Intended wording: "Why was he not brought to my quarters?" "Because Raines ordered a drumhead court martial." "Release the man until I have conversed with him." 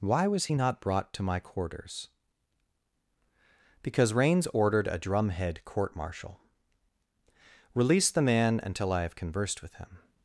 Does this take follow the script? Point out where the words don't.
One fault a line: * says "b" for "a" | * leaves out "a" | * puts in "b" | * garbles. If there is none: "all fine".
all fine